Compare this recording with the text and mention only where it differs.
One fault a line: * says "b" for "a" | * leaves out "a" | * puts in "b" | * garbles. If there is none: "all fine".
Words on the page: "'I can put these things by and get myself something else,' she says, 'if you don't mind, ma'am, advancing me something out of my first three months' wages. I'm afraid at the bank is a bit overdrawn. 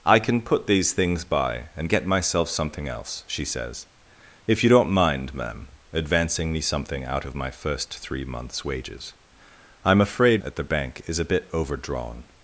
all fine